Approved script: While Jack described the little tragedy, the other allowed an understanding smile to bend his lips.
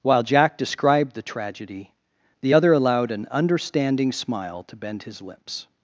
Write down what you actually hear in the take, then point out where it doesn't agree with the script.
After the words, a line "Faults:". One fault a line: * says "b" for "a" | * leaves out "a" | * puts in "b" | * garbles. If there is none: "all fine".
While Jack described the tragedy, the other allowed an understanding smile to bend his lips.
Faults:
* leaves out "little"